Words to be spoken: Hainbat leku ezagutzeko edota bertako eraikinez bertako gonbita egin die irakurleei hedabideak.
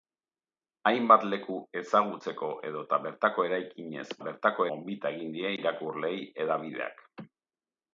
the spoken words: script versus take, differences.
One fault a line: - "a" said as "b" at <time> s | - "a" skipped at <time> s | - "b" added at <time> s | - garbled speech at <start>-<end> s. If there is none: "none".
none